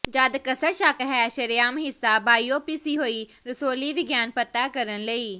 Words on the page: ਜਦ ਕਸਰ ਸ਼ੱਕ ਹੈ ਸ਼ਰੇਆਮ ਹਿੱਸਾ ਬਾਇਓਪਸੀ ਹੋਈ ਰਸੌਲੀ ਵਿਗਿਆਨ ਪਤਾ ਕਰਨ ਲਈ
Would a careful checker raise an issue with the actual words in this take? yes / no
no